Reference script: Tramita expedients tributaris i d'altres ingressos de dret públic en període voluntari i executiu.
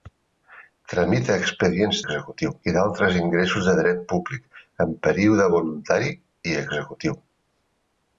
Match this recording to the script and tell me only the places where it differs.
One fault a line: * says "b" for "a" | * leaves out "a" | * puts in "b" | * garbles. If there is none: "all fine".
* says "executiu" for "tributaris"